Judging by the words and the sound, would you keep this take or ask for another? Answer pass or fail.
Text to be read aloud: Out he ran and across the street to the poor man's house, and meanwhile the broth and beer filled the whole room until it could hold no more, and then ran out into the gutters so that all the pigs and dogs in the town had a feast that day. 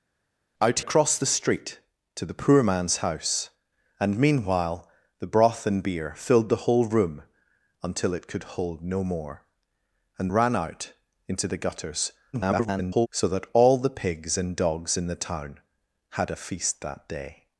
fail